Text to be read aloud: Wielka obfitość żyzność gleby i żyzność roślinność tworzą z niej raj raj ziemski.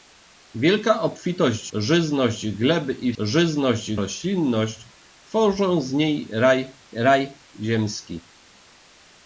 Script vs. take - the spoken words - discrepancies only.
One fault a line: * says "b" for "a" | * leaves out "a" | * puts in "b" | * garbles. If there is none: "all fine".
all fine